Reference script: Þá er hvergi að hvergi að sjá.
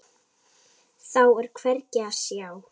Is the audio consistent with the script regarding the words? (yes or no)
no